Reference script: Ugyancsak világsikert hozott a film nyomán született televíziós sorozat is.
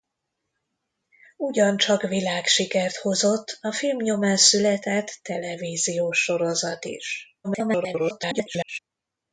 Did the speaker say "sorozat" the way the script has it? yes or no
yes